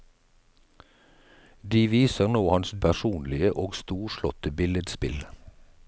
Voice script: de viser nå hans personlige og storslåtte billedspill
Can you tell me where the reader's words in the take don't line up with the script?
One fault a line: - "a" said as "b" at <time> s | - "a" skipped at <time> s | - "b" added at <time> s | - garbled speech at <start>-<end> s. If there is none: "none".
none